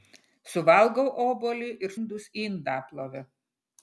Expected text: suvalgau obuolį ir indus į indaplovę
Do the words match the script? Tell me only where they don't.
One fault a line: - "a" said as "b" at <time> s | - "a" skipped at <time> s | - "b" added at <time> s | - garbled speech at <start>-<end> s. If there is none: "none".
none